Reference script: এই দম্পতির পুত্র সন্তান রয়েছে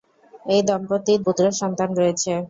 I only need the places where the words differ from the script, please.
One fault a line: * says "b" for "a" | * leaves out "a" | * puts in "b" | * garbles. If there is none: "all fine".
all fine